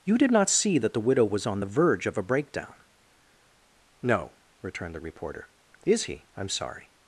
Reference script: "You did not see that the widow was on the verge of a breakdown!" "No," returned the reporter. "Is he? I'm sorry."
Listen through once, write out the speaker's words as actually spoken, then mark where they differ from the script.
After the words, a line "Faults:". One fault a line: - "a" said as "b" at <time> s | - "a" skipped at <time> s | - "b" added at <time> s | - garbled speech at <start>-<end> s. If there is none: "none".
"You did not see that the widow was on the verge of a breakdown!" "No," returned the reporter. "Is he? I'm sorry."
Faults:
none